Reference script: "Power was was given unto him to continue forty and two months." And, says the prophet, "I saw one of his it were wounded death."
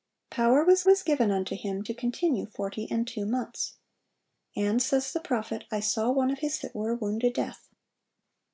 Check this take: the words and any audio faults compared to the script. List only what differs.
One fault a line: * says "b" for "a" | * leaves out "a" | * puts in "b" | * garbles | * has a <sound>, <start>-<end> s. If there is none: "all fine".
all fine